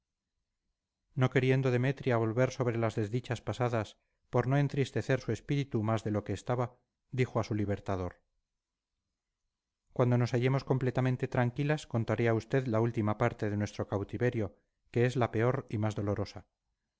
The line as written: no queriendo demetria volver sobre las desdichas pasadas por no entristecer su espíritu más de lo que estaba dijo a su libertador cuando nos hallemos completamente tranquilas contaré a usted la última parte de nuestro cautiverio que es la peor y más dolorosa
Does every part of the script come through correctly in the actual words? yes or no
yes